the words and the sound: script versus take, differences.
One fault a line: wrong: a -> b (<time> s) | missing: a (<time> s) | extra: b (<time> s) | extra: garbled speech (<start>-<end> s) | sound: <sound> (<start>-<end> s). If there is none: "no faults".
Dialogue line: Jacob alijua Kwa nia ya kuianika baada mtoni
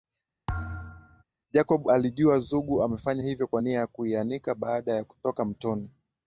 sound: thud (0.5-1.2 s)
extra: Zugu amefanya hivyo (2.4 s)
extra: ya kutoka (4.9 s)